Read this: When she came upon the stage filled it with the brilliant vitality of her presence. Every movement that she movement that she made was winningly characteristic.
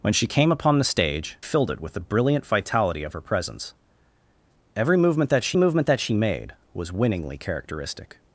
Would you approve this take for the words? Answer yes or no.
yes